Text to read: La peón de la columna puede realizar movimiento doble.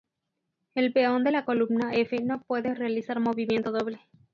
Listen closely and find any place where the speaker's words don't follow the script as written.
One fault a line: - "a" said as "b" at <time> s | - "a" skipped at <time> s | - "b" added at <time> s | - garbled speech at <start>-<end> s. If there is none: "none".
- "La" said as "El" at 0.7 s
- "f no" added at 1.9 s